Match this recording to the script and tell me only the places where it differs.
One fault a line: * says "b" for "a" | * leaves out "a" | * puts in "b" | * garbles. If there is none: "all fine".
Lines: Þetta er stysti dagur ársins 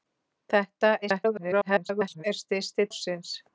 * garbles
* leaves out "dagur"